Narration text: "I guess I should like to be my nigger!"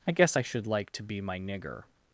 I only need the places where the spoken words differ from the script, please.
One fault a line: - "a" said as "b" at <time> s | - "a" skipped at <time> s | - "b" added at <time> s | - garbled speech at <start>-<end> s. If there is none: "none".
none